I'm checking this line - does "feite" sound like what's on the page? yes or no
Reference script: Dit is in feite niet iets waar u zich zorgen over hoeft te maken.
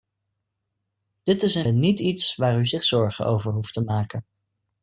no